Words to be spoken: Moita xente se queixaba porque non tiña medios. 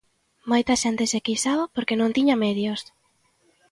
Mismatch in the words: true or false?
false